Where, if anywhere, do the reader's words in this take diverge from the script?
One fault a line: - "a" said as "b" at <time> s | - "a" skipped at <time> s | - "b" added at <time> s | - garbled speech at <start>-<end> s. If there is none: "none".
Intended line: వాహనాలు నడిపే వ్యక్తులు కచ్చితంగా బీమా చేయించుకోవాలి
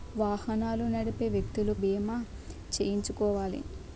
- "కచ్చితంగా" skipped at 1.7 s